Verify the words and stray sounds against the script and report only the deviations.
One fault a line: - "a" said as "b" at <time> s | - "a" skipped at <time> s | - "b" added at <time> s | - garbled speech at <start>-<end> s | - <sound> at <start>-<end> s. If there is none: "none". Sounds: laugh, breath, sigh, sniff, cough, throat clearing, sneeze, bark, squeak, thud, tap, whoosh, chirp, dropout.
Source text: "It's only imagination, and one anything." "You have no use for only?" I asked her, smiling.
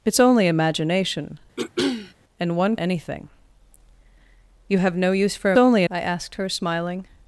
- throat clearing at 1.6-2.1 s